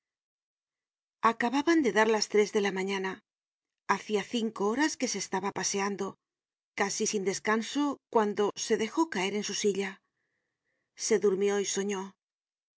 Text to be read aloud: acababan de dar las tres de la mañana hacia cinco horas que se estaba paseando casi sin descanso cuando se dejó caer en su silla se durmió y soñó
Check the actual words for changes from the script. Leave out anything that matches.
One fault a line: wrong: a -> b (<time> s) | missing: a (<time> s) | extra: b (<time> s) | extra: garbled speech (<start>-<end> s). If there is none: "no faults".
no faults